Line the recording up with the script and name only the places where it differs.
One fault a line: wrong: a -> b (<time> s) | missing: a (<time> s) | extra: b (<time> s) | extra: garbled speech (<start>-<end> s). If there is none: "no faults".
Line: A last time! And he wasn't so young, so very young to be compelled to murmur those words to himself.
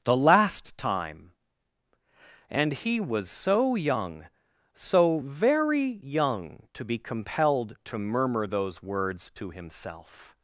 wrong: A -> The (0.0 s)
wrong: wasn't -> was (3.0 s)